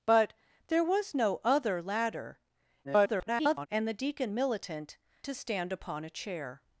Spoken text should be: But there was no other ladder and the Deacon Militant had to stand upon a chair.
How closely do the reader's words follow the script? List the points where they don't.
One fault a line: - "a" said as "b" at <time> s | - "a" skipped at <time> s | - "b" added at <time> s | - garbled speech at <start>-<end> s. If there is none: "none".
- garbled speech at 2.8-3.7 s
- "had" skipped at 5.0 s